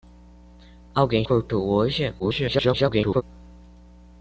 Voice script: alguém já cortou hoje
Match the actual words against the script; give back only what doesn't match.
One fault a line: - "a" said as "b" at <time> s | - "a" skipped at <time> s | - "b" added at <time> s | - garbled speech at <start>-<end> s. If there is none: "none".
- "já" skipped at 1.2 s
- garbled speech at 2.2-3.2 s